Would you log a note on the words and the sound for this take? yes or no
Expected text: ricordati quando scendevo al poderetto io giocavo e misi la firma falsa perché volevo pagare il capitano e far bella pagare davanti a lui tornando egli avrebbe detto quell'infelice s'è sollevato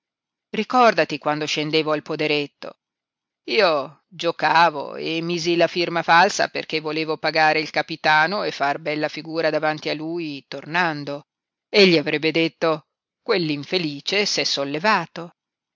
yes